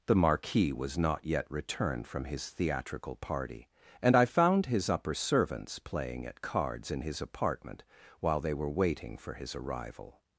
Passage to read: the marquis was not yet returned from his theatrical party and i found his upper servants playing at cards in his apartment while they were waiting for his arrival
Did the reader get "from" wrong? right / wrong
right